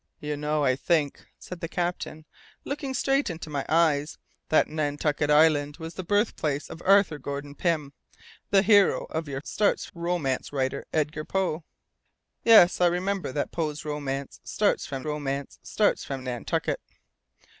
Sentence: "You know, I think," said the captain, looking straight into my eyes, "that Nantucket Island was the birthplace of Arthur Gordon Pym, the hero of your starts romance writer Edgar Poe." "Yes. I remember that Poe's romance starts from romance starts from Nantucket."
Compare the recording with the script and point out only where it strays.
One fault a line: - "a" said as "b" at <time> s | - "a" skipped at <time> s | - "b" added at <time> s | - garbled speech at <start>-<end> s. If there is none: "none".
none